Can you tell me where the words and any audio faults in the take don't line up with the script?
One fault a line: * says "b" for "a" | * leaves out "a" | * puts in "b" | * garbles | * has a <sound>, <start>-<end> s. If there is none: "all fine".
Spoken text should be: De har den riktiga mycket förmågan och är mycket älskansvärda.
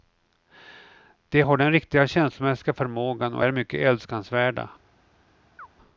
* says "känslomässiga" for "mycket"
* has a chirp, 5.6-5.7 s